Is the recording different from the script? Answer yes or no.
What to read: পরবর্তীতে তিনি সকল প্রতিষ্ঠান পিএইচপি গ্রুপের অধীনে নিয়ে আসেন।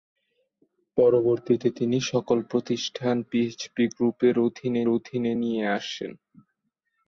yes